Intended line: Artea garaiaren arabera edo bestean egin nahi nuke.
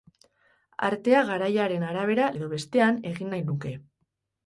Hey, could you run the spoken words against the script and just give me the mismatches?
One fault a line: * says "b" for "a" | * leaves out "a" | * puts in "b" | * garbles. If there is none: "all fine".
all fine